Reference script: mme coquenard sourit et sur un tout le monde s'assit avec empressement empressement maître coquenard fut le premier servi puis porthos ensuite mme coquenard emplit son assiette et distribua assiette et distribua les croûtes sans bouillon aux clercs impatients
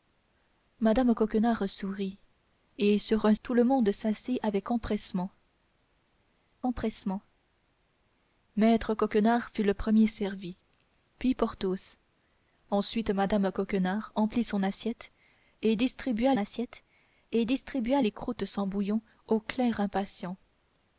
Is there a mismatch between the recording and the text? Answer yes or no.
no